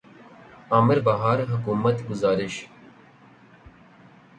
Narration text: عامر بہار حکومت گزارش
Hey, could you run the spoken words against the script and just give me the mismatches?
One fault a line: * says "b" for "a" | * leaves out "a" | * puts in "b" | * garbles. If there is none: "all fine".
all fine